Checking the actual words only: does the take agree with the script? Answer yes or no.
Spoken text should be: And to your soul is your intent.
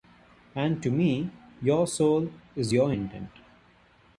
no